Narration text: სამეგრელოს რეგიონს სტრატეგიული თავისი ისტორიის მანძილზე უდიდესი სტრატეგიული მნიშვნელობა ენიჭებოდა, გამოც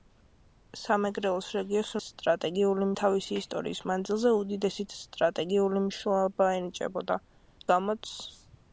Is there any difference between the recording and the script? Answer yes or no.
no